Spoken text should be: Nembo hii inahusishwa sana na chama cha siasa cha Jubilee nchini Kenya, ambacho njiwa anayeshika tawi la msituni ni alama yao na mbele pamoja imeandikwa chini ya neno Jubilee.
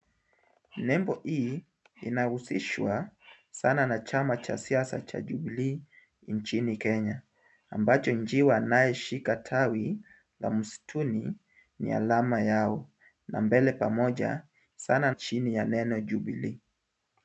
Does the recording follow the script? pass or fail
fail